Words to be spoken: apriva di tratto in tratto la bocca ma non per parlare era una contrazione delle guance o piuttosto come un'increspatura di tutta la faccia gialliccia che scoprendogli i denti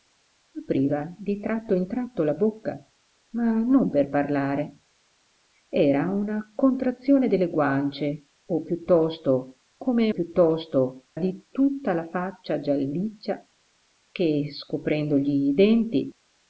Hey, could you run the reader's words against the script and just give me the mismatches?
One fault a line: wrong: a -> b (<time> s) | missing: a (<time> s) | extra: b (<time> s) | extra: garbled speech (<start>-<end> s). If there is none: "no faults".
wrong: un'increspatura -> piuttosto (10.1 s)